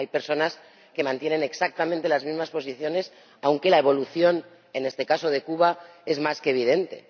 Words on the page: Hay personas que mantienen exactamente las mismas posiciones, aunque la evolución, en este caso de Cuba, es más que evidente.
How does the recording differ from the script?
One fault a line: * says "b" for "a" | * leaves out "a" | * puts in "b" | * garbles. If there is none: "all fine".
all fine